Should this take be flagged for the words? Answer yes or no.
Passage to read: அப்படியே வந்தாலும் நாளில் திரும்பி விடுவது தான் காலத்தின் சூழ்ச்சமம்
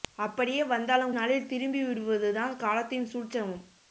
no